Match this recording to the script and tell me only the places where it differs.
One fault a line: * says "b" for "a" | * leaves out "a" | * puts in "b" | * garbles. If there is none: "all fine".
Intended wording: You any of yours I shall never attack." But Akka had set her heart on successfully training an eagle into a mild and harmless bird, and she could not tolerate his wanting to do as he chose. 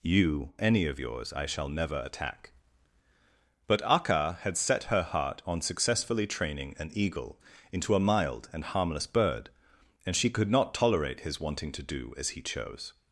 all fine